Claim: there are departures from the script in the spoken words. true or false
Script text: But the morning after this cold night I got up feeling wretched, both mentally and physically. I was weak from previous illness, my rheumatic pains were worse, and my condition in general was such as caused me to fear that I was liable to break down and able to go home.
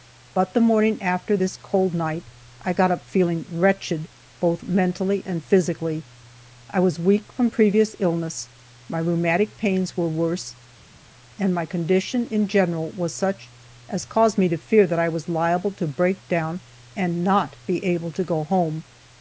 true